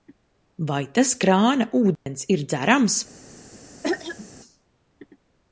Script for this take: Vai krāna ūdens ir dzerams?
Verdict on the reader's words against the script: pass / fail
fail